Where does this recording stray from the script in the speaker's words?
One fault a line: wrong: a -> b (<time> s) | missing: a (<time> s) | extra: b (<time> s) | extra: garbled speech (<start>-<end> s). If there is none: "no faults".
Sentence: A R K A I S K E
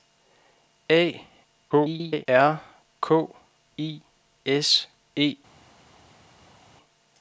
extra: garbled speech (1.7-2.3 s)
missing: A (3.3 s)
missing: K (4.9 s)